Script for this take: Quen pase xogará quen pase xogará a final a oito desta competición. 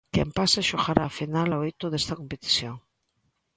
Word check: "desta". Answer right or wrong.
right